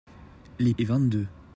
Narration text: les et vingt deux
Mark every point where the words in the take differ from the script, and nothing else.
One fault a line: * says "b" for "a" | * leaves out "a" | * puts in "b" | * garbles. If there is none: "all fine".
all fine